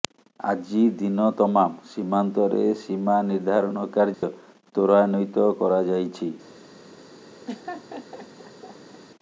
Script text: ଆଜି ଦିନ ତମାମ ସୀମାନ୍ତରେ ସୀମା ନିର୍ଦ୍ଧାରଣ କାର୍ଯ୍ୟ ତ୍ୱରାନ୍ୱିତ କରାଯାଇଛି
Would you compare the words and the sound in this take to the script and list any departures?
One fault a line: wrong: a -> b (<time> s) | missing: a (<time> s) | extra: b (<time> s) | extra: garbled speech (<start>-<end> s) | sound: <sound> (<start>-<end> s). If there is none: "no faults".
sound: dropout (4.1-4.2 s)
sound: laugh (7.5-9.0 s)